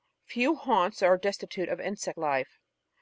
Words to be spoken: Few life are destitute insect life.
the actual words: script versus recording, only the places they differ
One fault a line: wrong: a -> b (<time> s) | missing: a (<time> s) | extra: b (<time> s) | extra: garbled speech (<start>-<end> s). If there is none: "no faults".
wrong: life -> haunts (0.6 s)
extra: of (1.7 s)